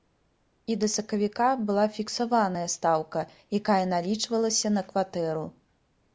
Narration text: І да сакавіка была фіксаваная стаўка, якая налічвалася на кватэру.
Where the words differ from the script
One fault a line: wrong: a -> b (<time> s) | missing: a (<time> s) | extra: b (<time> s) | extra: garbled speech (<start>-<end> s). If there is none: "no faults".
no faults